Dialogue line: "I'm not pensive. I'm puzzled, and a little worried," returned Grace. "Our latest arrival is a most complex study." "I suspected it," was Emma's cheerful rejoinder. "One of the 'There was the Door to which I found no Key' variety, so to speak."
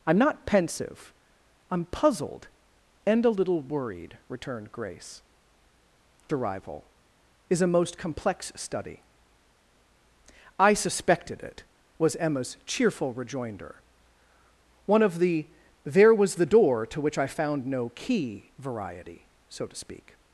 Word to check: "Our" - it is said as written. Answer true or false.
false